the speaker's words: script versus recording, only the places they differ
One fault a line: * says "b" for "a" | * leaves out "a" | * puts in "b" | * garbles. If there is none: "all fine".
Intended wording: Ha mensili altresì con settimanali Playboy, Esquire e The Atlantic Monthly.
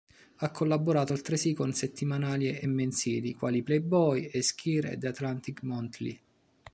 * says "collaborato" for "mensili"
* puts in "e mensili quali"